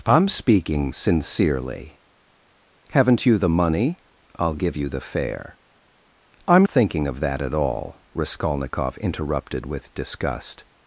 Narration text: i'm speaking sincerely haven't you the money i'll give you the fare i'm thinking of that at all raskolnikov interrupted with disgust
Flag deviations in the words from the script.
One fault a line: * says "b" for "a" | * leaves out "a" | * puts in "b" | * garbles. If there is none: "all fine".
all fine